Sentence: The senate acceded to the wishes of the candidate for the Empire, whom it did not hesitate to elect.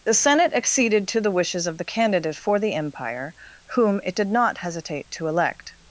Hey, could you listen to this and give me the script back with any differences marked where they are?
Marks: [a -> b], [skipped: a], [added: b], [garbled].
The senate acceded to the wishes of the candidate for the Empire, whom it did not hesitate to elect.